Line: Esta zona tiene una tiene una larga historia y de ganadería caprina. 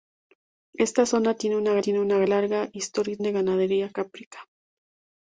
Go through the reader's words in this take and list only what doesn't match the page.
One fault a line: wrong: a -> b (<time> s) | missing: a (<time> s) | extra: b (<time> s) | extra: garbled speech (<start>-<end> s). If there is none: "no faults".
no faults